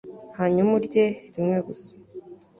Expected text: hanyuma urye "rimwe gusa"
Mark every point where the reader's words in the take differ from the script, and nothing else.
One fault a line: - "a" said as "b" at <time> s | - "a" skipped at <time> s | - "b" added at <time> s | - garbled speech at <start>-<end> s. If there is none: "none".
none